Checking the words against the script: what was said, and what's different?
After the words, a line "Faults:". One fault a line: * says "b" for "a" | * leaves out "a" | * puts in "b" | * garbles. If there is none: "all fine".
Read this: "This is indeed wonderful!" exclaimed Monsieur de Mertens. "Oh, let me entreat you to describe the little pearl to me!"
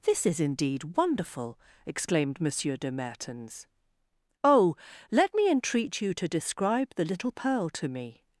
"This is indeed wonderful!" exclaimed Monsieur de Mertens. "Oh, let me entreat you to describe the little pearl to me!"
Faults:
all fine